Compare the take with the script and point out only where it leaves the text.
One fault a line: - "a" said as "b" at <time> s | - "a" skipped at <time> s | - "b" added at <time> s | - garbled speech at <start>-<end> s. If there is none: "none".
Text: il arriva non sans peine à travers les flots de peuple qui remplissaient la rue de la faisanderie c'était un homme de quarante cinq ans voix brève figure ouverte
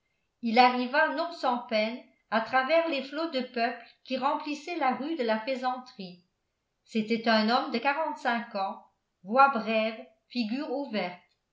none